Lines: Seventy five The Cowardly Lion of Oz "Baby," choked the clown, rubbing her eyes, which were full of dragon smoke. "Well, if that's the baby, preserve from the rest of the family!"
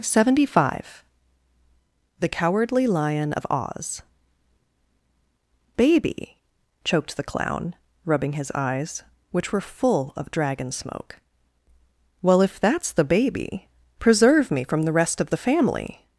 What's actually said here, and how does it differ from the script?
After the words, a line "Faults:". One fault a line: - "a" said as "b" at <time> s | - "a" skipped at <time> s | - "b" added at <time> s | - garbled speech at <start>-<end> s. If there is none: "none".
Seventy five The Cowardly Lion of Oz "Baby," choked the clown, rubbing his eyes, which were full of dragon smoke. "Well, if that's the baby, preserve me from the rest of the family!"
Faults:
- "her" said as "his" at 8.3 s
- "me" added at 14.5 s